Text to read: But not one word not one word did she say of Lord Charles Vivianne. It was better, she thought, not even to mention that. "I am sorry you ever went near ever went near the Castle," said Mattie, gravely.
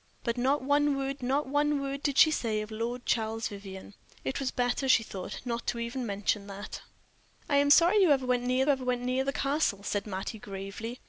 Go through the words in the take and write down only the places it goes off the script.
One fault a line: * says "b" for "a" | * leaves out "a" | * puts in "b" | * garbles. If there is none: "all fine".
all fine